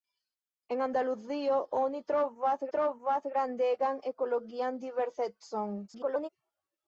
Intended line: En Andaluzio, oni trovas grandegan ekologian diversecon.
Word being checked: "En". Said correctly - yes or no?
yes